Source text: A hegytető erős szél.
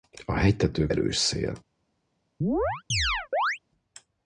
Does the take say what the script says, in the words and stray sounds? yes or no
no